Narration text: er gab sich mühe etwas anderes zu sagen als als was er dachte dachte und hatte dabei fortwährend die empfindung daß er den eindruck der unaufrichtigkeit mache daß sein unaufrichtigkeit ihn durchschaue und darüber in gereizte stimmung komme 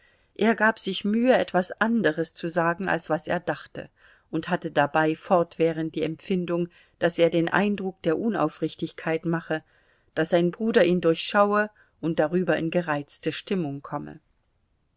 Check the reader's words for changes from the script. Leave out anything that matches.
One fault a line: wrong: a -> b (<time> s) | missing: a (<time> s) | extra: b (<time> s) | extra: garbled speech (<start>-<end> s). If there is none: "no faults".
missing: als (3.1 s)
missing: dachte (3.9 s)
wrong: unaufrichtigkeit -> bruder (10.5 s)